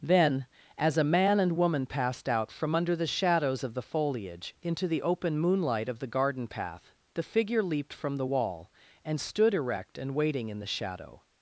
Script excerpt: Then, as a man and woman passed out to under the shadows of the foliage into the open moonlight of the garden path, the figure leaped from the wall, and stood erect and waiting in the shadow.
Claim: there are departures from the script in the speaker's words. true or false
true